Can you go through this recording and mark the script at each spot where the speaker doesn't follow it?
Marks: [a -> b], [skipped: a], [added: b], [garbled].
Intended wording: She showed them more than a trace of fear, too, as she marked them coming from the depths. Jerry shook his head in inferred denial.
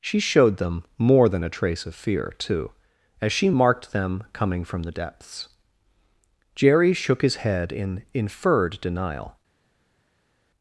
She showed them more than a trace of fear, too, as she marked them coming from the depths. Jerry shook his head in inferred denial.